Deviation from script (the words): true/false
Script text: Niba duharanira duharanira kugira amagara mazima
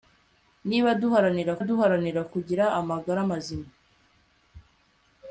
false